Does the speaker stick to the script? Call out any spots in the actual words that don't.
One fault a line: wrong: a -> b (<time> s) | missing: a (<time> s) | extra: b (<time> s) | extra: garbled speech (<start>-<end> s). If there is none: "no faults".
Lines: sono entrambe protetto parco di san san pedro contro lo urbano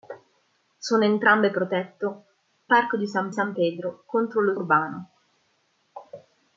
no faults